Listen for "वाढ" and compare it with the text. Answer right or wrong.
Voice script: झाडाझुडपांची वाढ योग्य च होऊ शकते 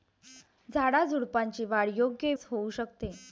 right